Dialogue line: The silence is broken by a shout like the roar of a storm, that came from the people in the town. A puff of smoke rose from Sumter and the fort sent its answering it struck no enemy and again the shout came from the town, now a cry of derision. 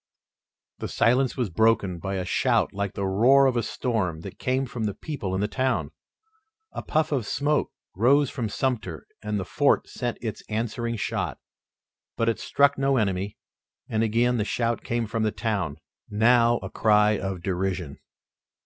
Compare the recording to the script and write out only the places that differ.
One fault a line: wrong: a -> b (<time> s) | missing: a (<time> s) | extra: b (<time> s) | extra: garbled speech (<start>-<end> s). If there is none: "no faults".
wrong: is -> was (1.4 s)
extra: shot but (11.0 s)